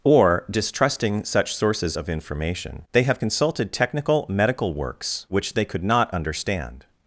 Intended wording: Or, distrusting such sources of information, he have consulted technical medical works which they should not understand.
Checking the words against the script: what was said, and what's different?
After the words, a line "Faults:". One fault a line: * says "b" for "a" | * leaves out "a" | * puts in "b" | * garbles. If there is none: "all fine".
Or, distrusting such sources of information, they have consulted technical medical works which they could not understand.
Faults:
* says "they" for "he"
* says "could" for "should"